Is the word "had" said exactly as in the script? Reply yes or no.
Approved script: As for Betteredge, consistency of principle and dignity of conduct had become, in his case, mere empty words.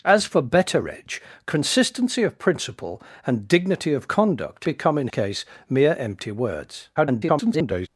no